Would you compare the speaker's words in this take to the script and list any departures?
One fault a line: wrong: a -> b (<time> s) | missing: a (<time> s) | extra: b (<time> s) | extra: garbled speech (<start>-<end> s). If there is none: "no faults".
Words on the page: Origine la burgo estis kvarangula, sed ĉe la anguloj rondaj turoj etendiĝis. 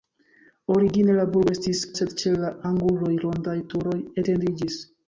missing: kvarangula (1.8 s)